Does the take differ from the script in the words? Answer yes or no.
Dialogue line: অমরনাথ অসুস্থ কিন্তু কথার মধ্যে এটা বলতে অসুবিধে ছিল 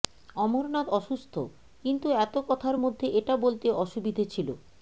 yes